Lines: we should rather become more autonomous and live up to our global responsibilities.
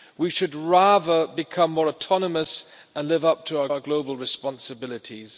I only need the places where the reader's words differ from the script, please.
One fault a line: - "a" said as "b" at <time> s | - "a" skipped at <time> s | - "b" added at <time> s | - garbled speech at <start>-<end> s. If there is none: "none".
- "our" added at 3.7 s